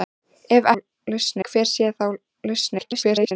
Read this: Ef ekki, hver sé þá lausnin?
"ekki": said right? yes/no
no